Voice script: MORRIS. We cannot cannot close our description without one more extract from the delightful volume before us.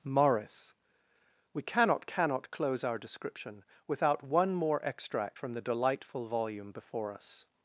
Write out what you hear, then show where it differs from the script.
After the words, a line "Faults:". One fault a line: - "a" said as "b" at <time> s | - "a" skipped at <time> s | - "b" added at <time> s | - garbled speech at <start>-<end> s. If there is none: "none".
MORRIS. We cannot cannot close our description without one more extract from the delightful volume before us.
Faults:
none